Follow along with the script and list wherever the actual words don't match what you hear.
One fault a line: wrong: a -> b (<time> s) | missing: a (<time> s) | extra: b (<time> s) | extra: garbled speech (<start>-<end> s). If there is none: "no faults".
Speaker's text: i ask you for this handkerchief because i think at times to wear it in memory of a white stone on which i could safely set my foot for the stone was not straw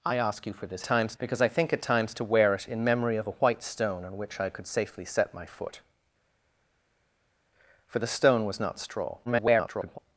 wrong: handkerchief -> times (0.8 s)
extra: garbled speech (9.3-10.0 s)